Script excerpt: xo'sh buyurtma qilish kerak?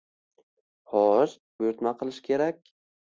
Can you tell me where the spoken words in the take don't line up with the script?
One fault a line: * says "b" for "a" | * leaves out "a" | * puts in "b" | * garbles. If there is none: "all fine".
all fine